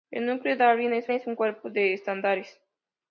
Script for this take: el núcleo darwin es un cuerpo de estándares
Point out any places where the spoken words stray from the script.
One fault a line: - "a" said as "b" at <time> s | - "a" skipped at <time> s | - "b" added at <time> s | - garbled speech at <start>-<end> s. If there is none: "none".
- "es" added at 1.1 s